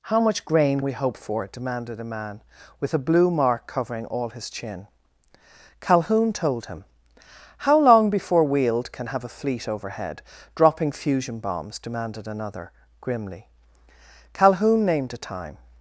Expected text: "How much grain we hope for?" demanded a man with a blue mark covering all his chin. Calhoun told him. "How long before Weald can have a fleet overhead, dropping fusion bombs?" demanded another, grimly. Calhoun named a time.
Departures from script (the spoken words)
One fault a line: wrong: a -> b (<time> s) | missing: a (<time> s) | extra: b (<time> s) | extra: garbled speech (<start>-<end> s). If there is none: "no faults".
no faults